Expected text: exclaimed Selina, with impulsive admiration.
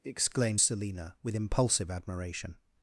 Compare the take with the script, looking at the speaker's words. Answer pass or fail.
pass